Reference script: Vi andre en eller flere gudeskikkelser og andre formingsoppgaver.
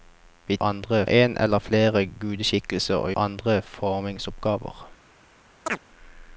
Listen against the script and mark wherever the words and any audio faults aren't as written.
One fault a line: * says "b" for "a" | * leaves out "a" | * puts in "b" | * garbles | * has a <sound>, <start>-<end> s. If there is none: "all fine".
* has a chirp, 5.7-5.8 s